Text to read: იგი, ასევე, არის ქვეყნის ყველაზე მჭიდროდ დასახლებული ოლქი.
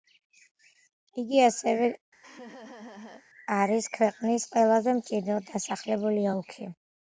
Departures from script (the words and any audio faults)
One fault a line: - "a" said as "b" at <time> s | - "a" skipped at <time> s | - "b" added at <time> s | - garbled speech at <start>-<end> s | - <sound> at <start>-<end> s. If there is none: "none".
- laugh at 2.2-3.3 s